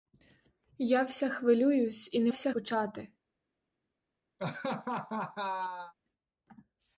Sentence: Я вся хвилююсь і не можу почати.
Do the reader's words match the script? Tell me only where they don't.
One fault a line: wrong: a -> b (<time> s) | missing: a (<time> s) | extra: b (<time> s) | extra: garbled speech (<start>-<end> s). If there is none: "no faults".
wrong: можу -> вся (2.3 s)